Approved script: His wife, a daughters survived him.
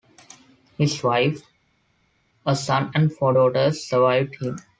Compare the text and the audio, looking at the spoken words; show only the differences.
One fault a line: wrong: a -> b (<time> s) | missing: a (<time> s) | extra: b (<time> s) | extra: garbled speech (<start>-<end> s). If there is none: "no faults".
extra: son and four (2.5 s)